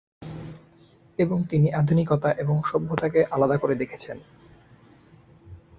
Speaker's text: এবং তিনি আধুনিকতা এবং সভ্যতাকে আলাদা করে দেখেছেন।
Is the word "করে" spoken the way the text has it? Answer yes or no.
yes